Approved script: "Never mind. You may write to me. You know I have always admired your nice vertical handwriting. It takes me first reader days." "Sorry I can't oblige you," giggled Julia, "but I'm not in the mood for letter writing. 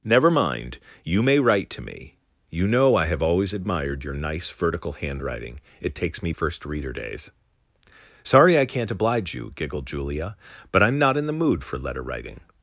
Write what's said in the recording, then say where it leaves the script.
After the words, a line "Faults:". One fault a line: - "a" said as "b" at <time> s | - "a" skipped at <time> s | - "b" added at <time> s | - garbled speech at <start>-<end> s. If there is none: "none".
"Never mind. You may write to me. You know I have always admired your nice vertical handwriting. It takes me first reader days." "Sorry I can't oblige you," giggled Julia, "but I'm not in the mood for letter writing.
Faults:
none